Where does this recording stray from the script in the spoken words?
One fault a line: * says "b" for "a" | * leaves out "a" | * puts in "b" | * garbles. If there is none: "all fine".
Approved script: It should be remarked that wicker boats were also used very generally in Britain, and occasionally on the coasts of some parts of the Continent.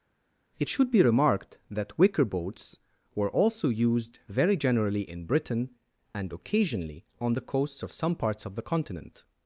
all fine